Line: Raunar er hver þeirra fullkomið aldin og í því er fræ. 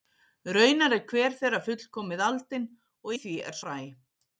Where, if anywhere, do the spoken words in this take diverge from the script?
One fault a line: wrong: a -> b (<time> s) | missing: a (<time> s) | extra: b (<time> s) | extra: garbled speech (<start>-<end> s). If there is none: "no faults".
no faults